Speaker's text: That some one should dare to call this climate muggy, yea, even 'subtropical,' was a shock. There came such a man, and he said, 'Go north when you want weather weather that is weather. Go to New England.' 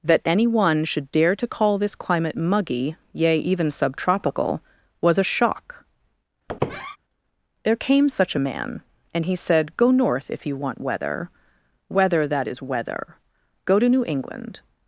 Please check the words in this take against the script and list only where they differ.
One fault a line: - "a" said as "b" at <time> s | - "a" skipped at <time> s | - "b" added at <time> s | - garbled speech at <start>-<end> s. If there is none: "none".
- "some" said as "any" at 0.2 s
- "when" said as "if" at 10.3 s